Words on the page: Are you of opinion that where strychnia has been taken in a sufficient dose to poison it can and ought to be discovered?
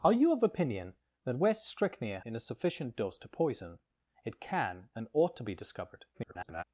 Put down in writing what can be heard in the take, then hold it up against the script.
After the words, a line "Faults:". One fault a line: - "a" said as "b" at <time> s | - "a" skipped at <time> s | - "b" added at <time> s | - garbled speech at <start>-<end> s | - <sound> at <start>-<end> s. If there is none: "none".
Are you of opinion that where strychnia in a sufficient dose to poison it can and ought to be discovered? [garbled]
Faults:
- "has been taken" skipped at 2.2 s
- garbled speech at 6.1-6.6 s